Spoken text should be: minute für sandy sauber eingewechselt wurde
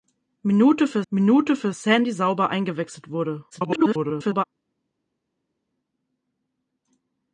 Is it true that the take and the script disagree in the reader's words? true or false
true